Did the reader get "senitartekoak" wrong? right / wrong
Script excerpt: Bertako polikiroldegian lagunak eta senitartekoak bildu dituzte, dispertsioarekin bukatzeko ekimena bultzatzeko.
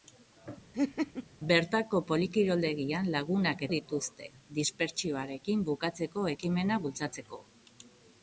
wrong